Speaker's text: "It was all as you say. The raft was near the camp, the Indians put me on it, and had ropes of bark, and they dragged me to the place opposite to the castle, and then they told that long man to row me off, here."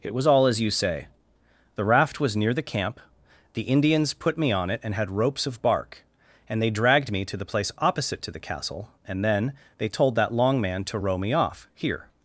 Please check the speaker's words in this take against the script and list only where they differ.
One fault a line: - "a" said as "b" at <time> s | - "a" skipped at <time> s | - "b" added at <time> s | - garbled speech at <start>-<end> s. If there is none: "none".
none